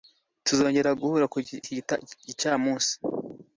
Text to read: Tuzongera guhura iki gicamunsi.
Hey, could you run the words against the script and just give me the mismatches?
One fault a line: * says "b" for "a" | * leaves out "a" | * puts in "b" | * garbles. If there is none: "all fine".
all fine